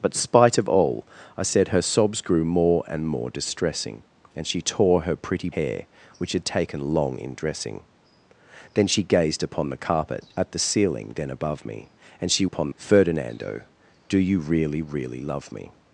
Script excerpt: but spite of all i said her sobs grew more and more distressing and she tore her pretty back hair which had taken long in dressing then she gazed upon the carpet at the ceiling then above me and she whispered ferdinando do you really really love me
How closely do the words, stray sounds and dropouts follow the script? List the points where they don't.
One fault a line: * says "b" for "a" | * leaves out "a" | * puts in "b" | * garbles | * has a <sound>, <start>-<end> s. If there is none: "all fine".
* leaves out "back"
* says "upon" for "whispered"